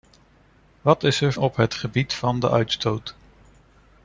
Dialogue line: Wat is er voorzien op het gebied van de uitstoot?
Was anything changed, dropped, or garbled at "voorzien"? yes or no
yes